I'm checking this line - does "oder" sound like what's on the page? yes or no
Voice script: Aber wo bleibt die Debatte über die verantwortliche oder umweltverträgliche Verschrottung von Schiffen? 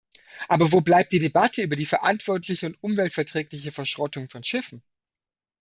no